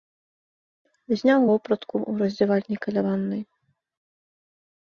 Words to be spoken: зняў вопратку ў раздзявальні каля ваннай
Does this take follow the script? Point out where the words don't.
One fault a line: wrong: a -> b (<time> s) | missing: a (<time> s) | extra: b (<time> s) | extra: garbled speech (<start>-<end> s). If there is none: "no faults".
no faults